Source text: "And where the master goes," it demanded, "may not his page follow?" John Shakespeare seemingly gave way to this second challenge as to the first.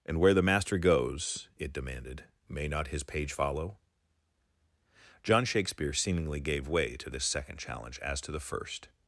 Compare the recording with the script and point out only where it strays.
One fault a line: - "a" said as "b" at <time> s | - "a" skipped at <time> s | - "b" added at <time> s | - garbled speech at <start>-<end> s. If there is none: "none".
none